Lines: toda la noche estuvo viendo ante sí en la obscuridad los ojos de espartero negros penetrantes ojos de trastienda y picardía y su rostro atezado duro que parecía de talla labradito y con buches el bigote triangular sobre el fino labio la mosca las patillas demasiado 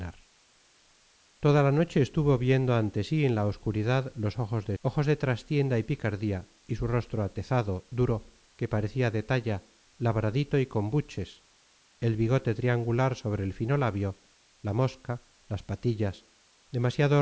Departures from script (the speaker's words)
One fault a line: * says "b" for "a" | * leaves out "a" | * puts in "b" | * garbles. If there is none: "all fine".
* leaves out "espartero negros penetrantes"